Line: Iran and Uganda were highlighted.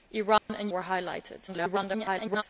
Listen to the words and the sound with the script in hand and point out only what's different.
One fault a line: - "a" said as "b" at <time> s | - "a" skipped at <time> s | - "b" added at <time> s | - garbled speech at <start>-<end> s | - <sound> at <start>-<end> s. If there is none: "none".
- dropout at 0.4-0.5 s
- "Uganda" skipped at 0.7 s
- garbled speech at 1.5-2.4 s